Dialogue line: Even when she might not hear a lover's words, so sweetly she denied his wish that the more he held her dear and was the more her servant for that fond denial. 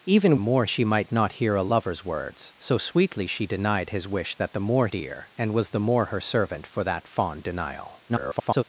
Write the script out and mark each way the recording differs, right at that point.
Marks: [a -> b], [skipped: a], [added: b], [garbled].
Even [when -> more] she might not hear a lover's words, so sweetly she denied his wish that the more [skipped: he held her] dear and was the more her servant for that fond denial. [garbled]